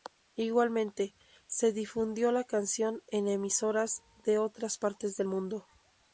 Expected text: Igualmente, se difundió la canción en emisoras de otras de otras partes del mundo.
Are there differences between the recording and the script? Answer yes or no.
yes